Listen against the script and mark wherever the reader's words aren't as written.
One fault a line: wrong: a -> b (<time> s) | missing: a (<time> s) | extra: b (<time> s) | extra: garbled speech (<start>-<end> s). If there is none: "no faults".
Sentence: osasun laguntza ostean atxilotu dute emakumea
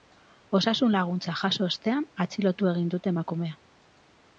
extra: jaso (1.4 s)
extra: egin (2.8 s)